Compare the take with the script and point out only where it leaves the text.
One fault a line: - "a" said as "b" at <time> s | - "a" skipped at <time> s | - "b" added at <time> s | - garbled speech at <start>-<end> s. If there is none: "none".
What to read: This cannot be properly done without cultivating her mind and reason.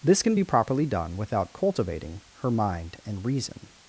- "cannot" said as "can" at 0.2 s